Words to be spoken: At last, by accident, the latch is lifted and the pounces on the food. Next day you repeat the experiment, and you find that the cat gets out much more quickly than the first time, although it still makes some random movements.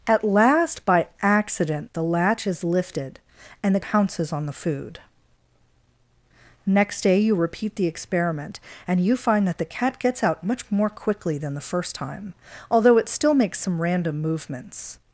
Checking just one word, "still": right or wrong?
right